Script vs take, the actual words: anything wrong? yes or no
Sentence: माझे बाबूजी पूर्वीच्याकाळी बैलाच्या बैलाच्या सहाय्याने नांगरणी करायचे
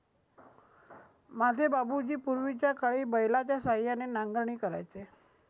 yes